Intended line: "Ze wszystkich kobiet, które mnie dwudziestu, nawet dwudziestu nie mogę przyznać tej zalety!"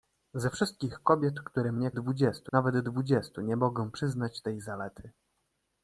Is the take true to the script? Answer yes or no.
yes